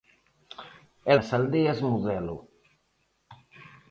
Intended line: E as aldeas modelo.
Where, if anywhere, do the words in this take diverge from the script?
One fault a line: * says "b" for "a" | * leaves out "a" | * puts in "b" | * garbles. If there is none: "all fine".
all fine